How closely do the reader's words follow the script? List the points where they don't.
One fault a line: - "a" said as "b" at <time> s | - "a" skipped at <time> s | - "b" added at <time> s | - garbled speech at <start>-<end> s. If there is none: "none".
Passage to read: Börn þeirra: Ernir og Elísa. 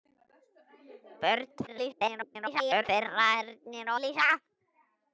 - garbled speech at 1.7-2.8 s
- "og" skipped at 3.9 s